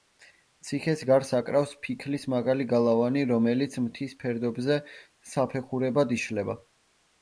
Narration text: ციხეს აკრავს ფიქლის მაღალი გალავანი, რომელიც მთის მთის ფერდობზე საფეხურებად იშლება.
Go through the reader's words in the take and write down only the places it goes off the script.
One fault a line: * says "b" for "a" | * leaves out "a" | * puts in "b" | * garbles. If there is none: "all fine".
* puts in "გარს"
* leaves out "მთის"